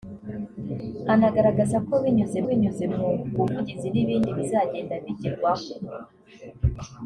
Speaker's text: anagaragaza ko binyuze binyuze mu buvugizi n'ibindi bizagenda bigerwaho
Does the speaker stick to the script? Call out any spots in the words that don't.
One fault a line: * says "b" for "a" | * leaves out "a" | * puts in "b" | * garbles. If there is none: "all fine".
all fine